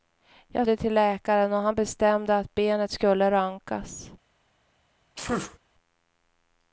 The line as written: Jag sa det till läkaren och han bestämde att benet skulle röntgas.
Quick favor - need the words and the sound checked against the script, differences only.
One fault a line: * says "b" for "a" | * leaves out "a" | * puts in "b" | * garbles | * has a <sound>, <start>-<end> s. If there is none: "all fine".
* leaves out "sa"
* has a sneeze, 5.2-5.6 s